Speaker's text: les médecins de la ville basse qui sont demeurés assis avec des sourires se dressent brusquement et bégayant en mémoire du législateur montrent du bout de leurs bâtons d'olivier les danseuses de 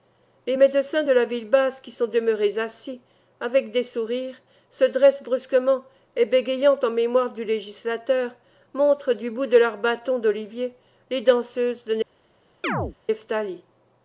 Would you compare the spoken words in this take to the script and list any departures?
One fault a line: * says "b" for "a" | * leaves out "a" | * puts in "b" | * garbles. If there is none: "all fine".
all fine